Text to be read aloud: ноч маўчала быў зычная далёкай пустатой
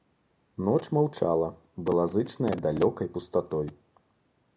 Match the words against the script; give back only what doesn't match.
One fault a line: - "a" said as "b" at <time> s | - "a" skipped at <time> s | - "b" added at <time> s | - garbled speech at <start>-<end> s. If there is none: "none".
- "быў" said as "была" at 1.9 s